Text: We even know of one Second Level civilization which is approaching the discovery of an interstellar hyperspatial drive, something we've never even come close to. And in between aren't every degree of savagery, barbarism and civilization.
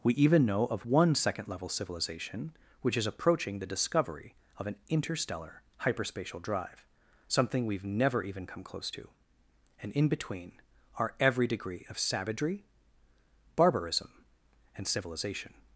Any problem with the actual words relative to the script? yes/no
yes